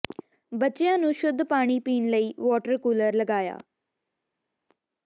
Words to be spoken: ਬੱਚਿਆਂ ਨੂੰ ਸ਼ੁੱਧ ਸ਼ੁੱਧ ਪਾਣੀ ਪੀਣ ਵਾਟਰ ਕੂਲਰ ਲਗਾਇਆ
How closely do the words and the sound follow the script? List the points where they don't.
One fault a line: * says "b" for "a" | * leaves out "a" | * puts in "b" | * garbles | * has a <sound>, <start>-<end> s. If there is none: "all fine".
* leaves out "ਸ਼ੁੱਧ"
* puts in "ਲਈ"